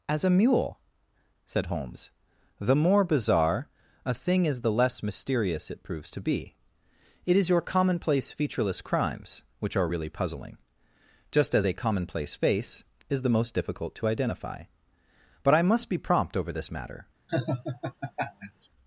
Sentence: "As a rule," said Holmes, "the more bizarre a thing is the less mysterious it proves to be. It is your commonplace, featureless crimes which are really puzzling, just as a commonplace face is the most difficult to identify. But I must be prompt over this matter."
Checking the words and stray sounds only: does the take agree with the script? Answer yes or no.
no